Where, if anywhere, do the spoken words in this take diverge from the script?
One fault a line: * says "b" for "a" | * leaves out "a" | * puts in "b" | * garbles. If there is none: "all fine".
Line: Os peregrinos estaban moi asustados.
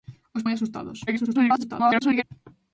* leaves out "peregrinos estaban"
* garbles